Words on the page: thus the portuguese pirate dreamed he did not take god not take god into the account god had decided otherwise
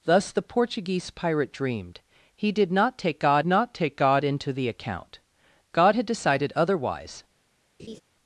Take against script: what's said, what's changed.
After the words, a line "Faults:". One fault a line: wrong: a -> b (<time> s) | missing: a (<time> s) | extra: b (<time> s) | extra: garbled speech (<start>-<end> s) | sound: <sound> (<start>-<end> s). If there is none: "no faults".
thus the portuguese pirate dreamed he did not take god not take god into the account god had decided otherwise
Faults:
sound: laugh (7.8-8.0 s)